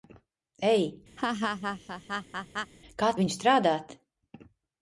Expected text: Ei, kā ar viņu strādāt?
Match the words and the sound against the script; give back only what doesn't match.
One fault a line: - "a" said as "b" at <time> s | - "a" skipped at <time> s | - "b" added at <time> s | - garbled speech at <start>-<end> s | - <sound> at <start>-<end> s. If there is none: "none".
- laugh at 1.2-2.7 s